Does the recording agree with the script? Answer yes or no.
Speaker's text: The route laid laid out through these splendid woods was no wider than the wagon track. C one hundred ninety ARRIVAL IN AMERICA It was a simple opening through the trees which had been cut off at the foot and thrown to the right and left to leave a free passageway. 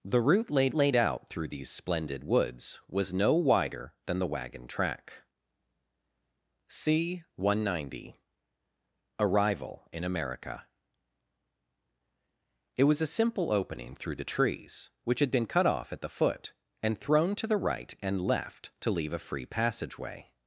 yes